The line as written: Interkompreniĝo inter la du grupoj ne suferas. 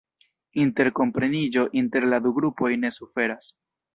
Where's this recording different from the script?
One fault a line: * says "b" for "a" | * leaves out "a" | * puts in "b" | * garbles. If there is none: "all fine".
all fine